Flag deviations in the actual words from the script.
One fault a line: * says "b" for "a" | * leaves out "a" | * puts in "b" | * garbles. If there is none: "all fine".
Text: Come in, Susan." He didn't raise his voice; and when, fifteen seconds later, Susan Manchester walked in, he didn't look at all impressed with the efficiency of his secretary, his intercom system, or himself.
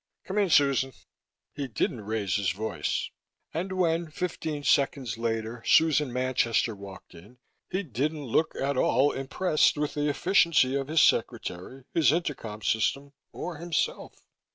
all fine